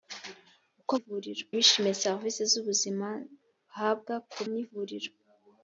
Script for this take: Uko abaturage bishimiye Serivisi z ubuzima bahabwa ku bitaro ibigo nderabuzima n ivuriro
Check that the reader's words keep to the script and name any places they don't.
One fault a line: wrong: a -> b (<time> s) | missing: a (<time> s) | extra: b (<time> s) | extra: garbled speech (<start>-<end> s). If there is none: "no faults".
wrong: abaturage -> ivuriro (1.0 s)
missing: bitaro ibigo nderabuzima (4.4 s)